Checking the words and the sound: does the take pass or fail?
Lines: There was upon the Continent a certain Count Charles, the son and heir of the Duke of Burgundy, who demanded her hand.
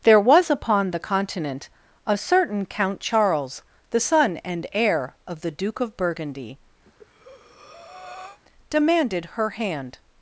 fail